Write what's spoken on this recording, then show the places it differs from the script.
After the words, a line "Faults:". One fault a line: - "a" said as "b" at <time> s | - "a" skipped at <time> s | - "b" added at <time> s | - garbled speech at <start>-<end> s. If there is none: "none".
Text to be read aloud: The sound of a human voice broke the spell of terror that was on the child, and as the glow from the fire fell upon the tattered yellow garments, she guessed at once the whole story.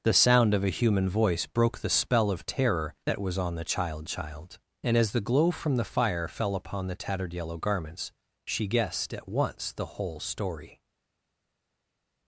The sound of a human voice broke the spell of terror that was on the child child, and as the glow from the fire fell upon the tattered yellow garments, she guessed at once the whole story.
Faults:
- "child" added at 4.1 s